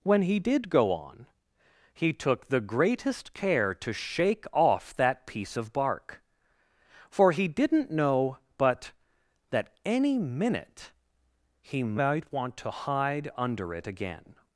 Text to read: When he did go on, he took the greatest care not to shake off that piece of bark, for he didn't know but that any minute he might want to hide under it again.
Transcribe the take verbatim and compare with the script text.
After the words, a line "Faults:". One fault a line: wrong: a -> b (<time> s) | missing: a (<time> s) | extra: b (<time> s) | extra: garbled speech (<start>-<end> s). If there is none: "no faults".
When he did go on, he took the greatest care to shake off that piece of bark, for he didn't know but that any minute he might want to hide under it again.
Faults:
missing: not (3.7 s)